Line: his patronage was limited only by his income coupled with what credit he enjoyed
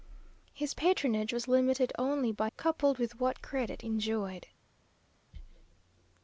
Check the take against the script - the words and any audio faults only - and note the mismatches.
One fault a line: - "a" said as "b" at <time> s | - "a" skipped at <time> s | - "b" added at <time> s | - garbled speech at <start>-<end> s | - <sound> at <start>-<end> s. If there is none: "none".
- "his income" skipped at 2.5 s
- "he" skipped at 3.8 s